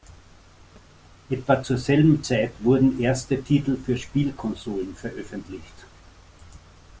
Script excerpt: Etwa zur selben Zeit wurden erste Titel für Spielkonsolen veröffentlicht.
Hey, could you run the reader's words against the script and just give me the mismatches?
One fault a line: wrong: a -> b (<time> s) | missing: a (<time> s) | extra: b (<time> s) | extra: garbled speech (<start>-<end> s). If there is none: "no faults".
no faults